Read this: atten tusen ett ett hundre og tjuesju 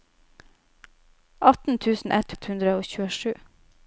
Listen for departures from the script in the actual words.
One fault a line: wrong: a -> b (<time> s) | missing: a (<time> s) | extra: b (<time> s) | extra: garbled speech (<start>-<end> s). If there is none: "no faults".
no faults